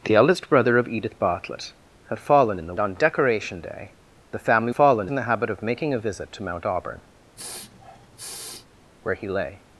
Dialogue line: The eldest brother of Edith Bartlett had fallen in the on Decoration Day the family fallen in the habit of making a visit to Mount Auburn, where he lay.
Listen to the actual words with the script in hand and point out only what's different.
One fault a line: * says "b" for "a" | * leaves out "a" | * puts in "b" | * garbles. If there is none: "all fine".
all fine